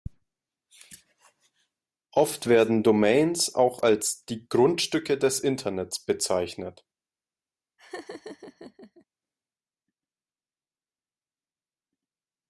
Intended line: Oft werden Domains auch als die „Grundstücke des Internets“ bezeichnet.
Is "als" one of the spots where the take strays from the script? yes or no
no